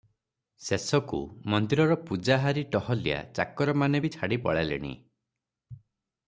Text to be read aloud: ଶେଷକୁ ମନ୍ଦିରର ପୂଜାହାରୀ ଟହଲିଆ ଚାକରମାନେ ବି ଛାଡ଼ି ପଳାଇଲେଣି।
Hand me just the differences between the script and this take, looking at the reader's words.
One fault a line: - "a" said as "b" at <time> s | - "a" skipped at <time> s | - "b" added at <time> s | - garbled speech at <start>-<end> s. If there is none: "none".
none